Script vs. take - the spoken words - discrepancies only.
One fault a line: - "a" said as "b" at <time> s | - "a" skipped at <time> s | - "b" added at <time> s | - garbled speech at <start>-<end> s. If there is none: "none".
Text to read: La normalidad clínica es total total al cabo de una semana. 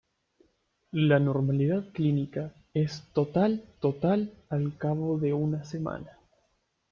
none